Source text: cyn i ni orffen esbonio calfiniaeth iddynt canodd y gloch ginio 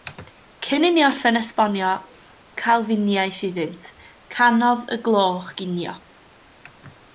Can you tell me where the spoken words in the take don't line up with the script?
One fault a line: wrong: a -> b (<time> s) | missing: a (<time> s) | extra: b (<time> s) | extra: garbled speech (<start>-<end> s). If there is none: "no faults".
no faults